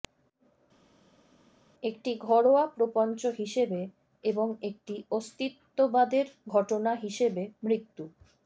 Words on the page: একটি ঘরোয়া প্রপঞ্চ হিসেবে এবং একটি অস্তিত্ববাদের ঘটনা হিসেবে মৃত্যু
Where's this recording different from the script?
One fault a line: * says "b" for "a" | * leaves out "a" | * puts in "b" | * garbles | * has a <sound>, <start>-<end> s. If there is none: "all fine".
all fine